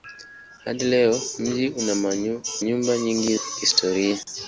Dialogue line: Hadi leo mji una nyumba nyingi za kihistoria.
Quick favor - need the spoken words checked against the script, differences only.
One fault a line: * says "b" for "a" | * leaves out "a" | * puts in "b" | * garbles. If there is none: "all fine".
* leaves out "una"
* leaves out "za"